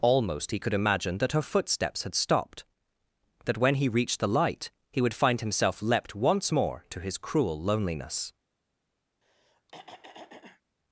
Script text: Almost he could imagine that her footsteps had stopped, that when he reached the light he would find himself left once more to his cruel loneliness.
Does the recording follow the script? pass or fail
fail